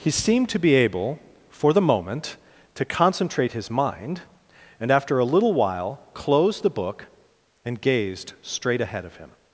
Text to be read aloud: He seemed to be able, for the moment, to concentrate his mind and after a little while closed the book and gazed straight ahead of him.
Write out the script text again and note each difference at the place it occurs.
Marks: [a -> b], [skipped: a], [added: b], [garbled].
He seemed to be able, for the moment, to concentrate his mind and after a little while closed the book and gazed straight ahead of him.